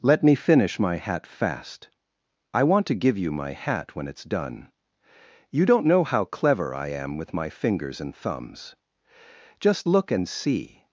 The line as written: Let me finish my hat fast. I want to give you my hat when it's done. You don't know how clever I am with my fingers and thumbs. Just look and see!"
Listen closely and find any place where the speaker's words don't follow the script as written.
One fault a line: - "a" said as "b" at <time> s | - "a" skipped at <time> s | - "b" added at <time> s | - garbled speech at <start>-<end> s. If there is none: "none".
none